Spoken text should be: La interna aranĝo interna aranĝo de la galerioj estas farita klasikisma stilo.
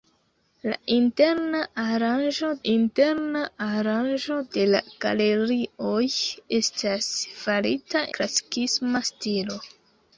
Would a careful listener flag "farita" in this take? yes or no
no